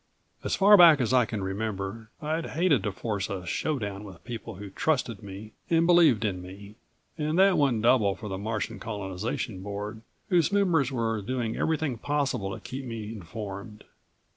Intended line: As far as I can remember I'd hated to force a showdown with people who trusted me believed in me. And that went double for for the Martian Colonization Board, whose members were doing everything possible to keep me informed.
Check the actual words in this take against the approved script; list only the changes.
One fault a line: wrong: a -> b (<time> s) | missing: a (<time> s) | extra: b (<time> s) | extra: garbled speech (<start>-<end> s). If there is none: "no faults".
extra: back (0.7 s)
extra: and (5.7 s)
missing: for (8.3 s)